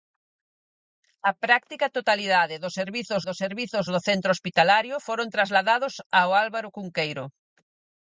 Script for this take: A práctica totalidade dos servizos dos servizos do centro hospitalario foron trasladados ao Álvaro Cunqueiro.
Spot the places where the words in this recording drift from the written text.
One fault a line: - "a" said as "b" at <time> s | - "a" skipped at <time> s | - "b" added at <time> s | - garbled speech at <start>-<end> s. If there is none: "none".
none